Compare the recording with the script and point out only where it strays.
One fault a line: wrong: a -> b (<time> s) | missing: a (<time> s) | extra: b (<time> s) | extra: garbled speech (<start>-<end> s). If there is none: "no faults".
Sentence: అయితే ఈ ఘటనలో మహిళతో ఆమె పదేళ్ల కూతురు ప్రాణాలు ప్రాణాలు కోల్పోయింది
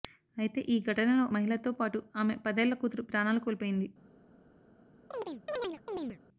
extra: పాటు (1.7 s)
missing: ప్రాణాలు (3.4 s)